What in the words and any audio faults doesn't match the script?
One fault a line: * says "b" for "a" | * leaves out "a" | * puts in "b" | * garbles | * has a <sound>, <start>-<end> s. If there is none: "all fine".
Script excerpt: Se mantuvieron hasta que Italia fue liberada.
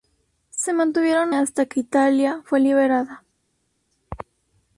all fine